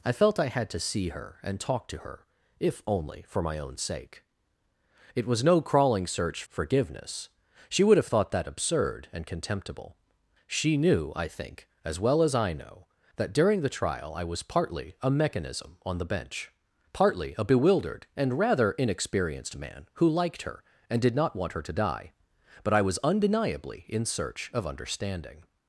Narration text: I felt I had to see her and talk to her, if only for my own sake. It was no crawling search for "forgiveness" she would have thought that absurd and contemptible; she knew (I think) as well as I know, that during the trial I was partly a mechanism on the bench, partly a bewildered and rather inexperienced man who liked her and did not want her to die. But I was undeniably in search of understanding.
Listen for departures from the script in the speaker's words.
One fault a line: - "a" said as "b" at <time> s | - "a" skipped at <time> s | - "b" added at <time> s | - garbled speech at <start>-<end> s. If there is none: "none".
- "for" skipped at 6.4 s